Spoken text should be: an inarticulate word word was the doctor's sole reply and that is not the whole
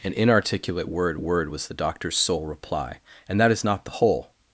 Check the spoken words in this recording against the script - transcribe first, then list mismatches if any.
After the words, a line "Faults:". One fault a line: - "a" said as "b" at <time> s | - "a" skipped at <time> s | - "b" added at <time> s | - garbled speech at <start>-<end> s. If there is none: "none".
an inarticulate word word was the doctor's sole reply and that is not the whole
Faults:
none